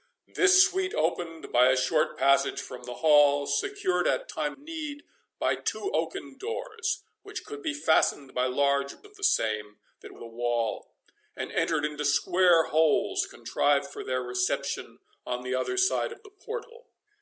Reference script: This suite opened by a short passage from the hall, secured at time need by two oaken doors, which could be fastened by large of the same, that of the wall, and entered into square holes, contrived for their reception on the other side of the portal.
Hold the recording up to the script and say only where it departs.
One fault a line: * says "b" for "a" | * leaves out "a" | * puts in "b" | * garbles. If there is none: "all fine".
all fine